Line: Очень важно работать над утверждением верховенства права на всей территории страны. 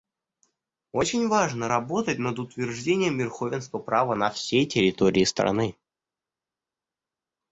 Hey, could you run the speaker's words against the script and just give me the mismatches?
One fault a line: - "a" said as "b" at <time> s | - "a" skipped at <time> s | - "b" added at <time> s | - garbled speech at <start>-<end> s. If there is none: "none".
none